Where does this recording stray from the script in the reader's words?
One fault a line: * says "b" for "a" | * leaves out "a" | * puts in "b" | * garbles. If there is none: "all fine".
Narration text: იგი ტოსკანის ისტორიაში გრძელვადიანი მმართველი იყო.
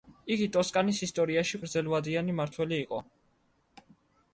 all fine